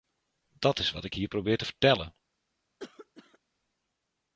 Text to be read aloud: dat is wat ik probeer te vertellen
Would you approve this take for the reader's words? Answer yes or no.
no